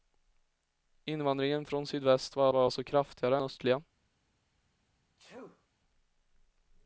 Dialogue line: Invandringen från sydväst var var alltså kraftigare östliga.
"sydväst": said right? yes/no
yes